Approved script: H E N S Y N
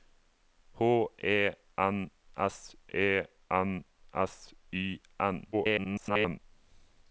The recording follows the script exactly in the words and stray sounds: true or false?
false